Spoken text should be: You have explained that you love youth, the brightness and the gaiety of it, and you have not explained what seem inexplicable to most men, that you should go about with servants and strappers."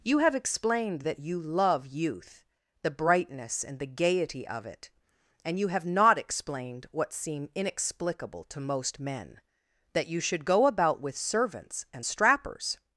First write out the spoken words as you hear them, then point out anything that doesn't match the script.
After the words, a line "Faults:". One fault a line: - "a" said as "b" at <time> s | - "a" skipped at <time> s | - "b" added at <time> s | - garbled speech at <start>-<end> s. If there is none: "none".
You have explained that you love youth, the brightness and the gaiety of it, and you have not explained what seem inexplicable to most men, that you should go about with servants and strappers."
Faults:
none